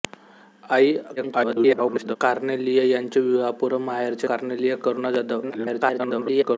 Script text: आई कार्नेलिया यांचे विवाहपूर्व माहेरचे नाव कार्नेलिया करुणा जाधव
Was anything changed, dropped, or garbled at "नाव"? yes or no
yes